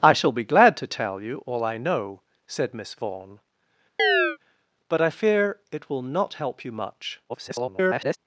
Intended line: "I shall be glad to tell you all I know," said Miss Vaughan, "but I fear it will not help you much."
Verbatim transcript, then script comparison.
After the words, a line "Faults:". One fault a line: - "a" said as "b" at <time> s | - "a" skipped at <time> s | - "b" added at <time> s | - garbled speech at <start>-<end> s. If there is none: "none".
"I shall be glad to tell you all I know," said Miss Vaughan, "but I fear it will not help you much." [garbled]
Faults:
- garbled speech at 7.3-8.2 s